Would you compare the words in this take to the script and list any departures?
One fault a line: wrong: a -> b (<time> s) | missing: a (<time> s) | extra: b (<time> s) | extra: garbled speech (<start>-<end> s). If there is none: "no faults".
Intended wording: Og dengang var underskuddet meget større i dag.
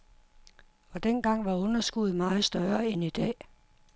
extra: end (2.9 s)